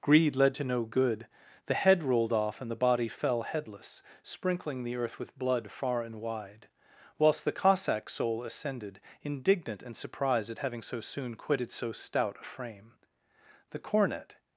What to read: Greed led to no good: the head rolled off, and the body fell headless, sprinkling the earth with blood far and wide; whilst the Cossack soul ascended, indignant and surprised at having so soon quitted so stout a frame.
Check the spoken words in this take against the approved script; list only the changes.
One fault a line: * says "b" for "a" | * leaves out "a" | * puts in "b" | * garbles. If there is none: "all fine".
* puts in "The cornet"